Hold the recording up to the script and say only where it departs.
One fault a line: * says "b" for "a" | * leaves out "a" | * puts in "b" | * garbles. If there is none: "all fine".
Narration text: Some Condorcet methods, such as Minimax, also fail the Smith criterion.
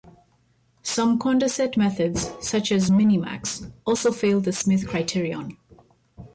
all fine